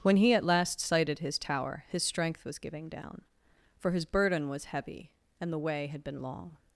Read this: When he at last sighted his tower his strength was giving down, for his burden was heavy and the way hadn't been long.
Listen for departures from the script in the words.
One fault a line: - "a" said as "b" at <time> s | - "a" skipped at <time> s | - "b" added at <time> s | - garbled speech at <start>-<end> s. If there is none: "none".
- "hadn't" said as "had" at 5.9 s